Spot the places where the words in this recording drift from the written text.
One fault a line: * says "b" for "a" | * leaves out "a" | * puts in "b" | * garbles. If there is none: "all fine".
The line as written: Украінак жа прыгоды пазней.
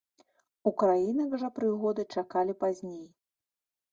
* puts in "чакалі"